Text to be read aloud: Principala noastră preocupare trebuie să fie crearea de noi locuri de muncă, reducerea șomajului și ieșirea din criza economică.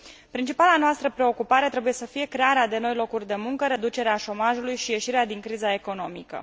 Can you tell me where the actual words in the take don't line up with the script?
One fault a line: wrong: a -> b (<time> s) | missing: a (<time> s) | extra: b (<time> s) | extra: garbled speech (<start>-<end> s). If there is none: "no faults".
no faults